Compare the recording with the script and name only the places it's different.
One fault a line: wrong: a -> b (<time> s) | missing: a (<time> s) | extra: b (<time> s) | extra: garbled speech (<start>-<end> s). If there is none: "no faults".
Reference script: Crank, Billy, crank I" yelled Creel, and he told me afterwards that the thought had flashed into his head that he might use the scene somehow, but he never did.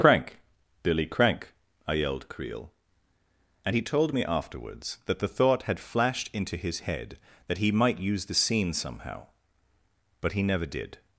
no faults